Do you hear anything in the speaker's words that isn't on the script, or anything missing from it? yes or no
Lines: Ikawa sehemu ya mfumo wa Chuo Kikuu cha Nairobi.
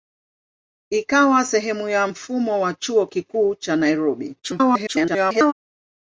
yes